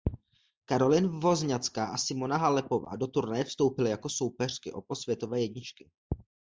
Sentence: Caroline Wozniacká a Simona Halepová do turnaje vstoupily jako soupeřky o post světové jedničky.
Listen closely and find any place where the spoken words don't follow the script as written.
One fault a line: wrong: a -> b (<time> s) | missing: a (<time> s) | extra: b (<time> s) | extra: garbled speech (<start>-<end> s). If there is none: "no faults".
no faults